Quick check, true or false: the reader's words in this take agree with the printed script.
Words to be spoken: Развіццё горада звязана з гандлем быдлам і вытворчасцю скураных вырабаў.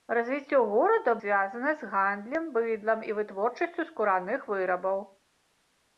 true